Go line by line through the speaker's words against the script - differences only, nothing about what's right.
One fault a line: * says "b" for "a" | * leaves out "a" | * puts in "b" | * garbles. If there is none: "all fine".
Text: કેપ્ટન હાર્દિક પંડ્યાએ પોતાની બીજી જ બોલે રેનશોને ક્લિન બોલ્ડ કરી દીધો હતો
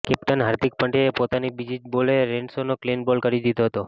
all fine